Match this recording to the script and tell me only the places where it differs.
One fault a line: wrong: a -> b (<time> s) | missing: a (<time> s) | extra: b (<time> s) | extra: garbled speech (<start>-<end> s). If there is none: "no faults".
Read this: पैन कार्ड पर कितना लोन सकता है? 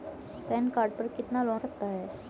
no faults